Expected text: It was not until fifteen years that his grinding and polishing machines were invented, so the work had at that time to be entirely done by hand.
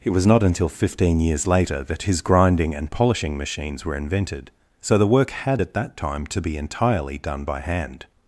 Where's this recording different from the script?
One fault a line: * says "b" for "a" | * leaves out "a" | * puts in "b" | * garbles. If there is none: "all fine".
* puts in "later"